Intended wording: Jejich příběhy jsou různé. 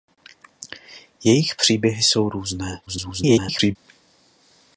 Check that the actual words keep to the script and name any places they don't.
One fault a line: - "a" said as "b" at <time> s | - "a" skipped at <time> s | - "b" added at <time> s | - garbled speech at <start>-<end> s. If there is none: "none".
- garbled speech at 2.9-3.8 s